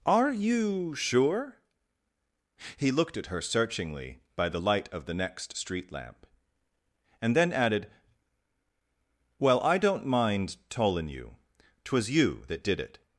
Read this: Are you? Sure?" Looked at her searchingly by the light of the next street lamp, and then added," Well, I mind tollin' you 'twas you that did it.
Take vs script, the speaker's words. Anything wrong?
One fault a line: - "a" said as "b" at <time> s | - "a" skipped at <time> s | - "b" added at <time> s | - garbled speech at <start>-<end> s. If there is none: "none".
- "He" added at 2.8 s
- "don't" added at 9.8 s